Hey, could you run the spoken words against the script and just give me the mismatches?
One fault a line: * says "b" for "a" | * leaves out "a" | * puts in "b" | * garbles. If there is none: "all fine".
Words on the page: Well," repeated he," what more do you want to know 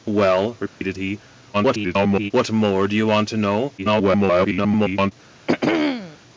* garbles
* garbles